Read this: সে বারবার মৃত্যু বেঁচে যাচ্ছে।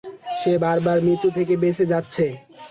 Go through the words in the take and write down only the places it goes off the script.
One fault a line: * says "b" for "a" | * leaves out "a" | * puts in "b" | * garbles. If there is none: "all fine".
* puts in "থেকে"